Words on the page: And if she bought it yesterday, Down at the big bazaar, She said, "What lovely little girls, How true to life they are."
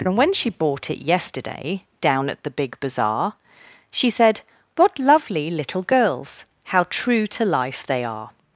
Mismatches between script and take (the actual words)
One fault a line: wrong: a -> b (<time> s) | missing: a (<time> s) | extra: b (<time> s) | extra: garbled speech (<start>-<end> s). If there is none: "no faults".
wrong: if -> when (0.2 s)